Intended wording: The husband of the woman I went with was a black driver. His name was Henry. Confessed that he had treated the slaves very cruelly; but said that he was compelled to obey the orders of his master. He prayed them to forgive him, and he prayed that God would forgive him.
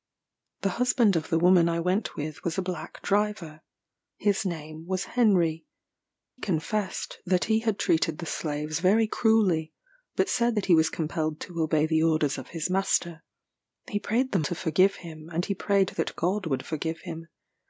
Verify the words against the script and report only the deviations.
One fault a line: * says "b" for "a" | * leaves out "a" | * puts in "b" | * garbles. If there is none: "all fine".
all fine